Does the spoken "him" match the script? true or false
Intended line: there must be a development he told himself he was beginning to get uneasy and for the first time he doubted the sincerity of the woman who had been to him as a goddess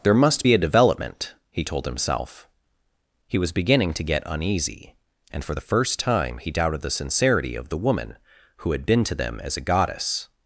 false